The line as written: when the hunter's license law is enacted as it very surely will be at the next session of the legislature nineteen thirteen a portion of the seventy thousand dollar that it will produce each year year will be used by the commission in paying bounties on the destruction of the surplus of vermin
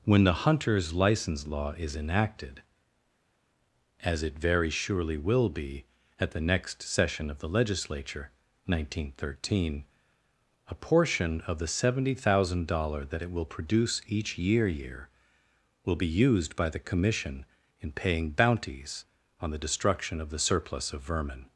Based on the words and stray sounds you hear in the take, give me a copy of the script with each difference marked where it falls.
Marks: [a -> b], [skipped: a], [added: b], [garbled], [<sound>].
when the hunter's license law is enacted as it very surely will be at the next session of the legislature nineteen thirteen a portion of the seventy thousand dollar that it will produce each year year will be used by the commission in paying bounties on the destruction of the surplus of vermin